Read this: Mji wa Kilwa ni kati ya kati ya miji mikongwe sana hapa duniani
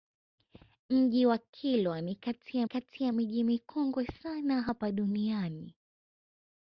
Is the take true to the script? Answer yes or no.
yes